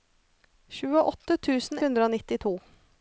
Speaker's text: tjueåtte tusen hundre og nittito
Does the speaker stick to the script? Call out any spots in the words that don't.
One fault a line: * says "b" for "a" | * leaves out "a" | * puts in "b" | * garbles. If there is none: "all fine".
all fine